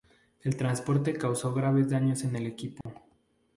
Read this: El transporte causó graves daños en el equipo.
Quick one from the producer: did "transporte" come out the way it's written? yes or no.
yes